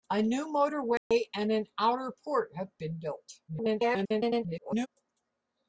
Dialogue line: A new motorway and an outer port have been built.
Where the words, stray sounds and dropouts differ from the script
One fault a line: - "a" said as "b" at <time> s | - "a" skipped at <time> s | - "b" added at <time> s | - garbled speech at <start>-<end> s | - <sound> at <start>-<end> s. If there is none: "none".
- dropout at 1.0-1.1 s
- garbled speech at 3.5-4.9 s